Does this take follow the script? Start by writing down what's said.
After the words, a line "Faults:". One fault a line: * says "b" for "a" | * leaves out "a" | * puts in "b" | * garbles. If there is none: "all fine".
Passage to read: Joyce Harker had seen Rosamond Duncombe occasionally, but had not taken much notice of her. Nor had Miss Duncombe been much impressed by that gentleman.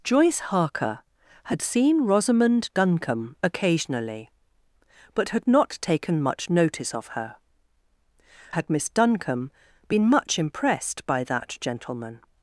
Joyce Harker had seen Rosamond Duncombe occasionally, but had not taken much notice of her. Had Miss Duncombe been much impressed by that gentleman.
Faults:
* leaves out "Nor"